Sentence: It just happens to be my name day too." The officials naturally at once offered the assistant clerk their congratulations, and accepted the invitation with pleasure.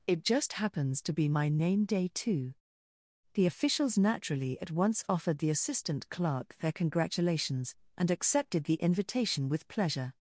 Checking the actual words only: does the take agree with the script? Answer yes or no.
yes